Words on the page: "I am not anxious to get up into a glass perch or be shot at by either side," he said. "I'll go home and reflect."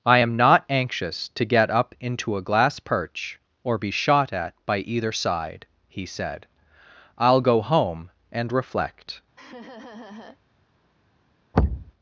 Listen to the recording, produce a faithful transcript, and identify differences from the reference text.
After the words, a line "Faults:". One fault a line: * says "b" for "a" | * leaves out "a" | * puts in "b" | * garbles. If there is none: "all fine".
"I am not anxious to get up into a glass perch or be shot at by either side," he said. "I'll go home and reflect."
Faults:
all fine